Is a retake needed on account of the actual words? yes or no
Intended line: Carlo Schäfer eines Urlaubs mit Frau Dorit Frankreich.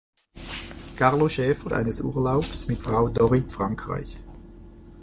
no